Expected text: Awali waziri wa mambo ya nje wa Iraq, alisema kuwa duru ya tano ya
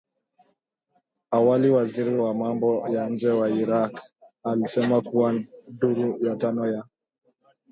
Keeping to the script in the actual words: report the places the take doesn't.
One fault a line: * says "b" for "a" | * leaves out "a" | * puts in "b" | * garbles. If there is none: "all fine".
all fine